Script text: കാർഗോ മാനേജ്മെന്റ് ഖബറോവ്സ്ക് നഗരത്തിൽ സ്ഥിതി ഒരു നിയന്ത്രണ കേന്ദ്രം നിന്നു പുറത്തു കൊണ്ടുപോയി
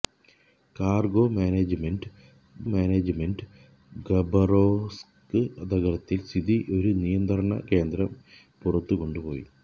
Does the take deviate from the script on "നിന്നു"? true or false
true